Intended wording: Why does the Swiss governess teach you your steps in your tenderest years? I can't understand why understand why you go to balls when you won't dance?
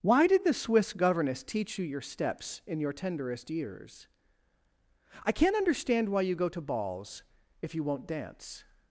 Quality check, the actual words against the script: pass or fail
fail